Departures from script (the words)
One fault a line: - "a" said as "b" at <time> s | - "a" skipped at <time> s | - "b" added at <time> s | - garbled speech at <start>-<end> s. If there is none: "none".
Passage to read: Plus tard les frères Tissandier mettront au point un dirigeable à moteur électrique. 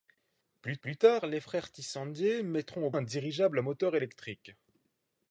- "plus" added at 0.8 s
- "point" skipped at 2.9 s